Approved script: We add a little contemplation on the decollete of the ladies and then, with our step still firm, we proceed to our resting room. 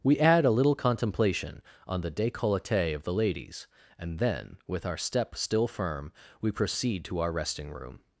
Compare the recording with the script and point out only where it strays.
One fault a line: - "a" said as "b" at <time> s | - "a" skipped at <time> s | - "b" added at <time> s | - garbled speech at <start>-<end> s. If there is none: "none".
none